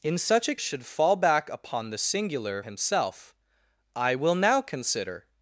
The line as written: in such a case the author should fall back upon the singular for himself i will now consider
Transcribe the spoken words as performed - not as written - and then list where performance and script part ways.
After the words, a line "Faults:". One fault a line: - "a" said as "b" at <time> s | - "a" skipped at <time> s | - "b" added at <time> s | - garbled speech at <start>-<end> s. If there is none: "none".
in such a should fall back upon the singular himself i will now consider
Faults:
- "case the author" skipped at 0.6 s
- "for" skipped at 2.6 s